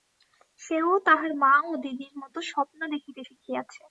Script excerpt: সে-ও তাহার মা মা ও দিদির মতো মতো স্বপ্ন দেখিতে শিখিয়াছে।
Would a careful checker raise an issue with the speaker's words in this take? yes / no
yes